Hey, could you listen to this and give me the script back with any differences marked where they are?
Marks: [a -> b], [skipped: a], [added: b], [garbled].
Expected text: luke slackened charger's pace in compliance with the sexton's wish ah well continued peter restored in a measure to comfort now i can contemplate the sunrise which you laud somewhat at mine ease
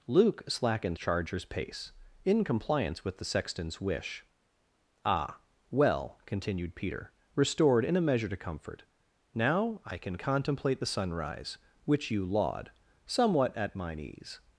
luke slackened charger's pace in compliance with the sexton's wish ah well continued peter restored in a measure to comfort now i can contemplate the sunrise which you laud somewhat at mine ease